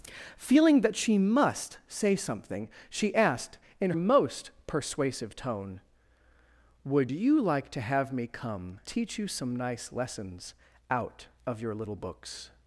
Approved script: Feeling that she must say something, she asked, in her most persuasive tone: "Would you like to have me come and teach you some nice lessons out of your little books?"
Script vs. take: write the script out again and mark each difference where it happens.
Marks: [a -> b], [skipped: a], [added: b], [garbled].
Feeling that she must say something, she asked, in [skipped: her] most persuasive tone: "Would you like to have me come [skipped: and] teach you some nice lessons out of your little books?"